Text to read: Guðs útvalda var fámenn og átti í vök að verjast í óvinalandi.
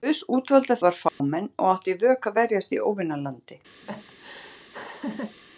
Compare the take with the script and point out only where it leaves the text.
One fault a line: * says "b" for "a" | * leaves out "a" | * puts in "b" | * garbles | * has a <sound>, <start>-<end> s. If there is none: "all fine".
* has a dropout, 1.1-1.2 s
* has a laugh, 3.8-5.4 s